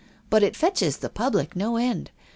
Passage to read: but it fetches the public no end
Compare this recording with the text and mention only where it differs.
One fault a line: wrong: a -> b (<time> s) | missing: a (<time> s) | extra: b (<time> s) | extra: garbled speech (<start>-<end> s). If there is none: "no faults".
no faults